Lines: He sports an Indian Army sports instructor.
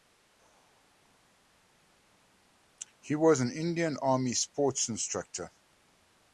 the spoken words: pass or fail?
fail